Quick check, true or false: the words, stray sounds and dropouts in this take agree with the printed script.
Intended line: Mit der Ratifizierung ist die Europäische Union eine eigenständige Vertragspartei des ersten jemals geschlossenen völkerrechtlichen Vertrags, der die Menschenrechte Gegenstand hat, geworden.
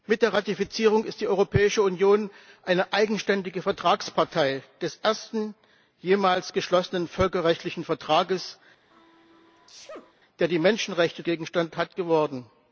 false